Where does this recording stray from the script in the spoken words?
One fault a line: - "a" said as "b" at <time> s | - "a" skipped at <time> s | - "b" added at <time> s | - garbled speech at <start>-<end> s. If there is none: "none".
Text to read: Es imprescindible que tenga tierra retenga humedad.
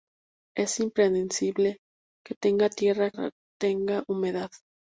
none